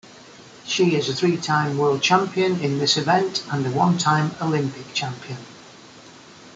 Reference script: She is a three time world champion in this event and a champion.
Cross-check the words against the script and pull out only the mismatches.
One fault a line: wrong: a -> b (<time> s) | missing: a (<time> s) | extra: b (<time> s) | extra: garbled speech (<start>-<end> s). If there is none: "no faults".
extra: one time Olympic (3.7 s)